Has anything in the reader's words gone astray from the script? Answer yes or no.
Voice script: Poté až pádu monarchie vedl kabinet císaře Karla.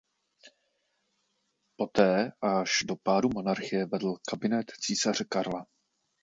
yes